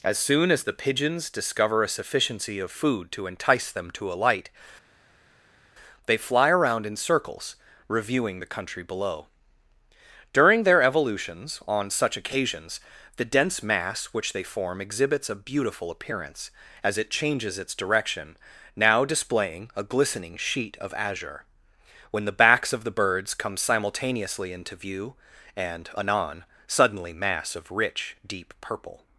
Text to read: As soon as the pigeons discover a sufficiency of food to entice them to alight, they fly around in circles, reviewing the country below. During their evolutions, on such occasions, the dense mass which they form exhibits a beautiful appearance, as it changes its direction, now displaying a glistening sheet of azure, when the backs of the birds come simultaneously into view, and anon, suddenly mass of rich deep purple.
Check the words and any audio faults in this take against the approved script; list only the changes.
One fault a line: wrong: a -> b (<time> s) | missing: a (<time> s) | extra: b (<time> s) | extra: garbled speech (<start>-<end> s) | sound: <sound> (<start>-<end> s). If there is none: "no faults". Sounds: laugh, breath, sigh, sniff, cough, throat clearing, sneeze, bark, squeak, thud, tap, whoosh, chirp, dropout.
no faults